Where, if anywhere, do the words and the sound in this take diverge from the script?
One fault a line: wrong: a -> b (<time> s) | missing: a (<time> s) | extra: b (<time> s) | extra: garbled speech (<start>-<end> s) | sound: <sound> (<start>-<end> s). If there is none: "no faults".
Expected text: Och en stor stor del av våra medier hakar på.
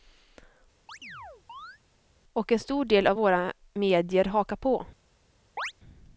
sound: chirp (0.9-1.8 s)
missing: stor (2.9 s)
sound: chirp (5.6-5.7 s)